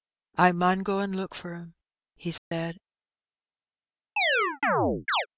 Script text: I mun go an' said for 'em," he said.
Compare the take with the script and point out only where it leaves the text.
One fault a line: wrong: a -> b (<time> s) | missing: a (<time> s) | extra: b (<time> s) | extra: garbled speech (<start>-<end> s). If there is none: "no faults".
wrong: said -> look (1.1 s)